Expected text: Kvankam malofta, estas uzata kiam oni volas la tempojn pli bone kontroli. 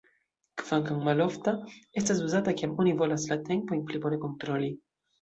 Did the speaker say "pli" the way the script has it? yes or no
yes